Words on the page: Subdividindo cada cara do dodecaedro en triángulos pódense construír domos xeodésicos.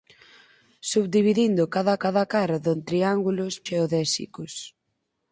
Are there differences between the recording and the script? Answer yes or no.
yes